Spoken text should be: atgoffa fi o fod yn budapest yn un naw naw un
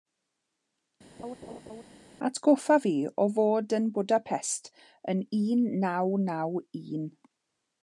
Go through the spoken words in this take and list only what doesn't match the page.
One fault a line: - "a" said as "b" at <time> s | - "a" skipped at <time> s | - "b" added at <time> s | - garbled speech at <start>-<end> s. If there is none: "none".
none